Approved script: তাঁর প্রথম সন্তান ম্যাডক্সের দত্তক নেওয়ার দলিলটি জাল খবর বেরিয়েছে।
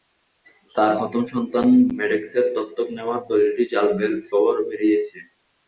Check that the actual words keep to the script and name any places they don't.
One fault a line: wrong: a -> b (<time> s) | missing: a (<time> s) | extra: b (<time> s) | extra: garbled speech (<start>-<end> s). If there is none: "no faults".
no faults